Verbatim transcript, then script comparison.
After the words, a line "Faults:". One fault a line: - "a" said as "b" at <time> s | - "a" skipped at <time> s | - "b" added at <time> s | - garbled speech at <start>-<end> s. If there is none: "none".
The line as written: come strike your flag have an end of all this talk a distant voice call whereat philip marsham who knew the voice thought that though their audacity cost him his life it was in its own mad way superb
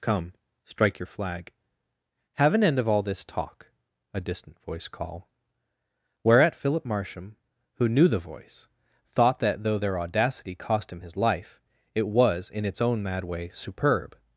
come strike your flag have an end of all this talk a distant voice call whereat philip marsham who knew the voice thought that though their audacity cost him his life it was in its own mad way superb
Faults:
none